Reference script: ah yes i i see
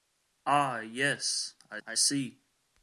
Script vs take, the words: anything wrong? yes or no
no